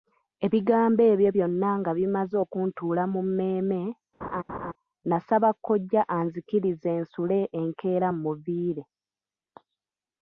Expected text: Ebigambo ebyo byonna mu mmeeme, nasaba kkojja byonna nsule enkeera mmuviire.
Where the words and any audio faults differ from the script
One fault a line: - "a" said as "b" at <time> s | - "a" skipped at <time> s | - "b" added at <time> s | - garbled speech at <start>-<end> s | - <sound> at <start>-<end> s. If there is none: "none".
- "nga bimaze okuntuula" added at 1.8 s
- laugh at 4.2-4.7 s
- "byonna" said as "anzikirize" at 6.2 s